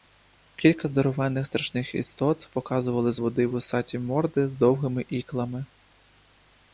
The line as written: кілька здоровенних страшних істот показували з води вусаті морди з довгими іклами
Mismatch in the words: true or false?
false